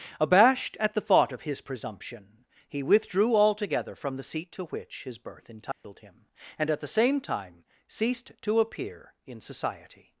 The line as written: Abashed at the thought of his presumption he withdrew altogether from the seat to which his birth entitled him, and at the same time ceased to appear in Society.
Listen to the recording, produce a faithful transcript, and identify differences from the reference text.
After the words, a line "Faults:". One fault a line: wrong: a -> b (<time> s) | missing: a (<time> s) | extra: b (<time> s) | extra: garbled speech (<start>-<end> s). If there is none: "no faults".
Abashed at the thought of his presumption he withdrew altogether from the seat to which his birth entitled him, and at the same time ceased to appear in Society.
Faults:
no faults